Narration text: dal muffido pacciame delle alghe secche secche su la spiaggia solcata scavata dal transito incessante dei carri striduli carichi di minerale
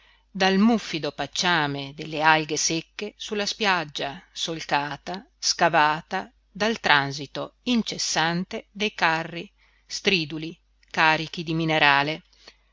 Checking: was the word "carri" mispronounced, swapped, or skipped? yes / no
no